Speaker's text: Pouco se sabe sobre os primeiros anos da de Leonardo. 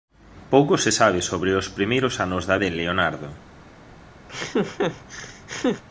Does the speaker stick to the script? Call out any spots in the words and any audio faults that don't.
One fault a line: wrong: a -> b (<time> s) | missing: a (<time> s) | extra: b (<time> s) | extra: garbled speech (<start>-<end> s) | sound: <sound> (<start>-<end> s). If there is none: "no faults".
sound: laugh (4.3-5.8 s)